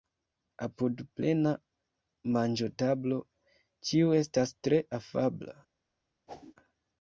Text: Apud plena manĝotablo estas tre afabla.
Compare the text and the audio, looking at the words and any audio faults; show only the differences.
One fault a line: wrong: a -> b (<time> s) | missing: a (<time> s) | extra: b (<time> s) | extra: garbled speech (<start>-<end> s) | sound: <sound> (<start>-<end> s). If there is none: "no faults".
extra: ĉiu (3.9 s)
sound: whoosh (6.3-6.5 s)